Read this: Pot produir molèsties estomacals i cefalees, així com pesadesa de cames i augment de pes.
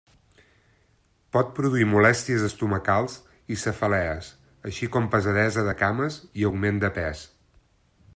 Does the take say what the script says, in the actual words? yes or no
yes